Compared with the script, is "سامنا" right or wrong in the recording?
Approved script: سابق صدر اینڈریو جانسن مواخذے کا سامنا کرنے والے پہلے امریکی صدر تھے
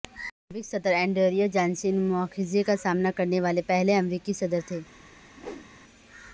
right